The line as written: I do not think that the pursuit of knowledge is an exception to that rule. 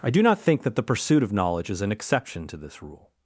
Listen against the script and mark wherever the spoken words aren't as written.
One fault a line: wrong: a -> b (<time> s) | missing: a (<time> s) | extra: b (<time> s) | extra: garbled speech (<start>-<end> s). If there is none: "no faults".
wrong: that -> this (2.6 s)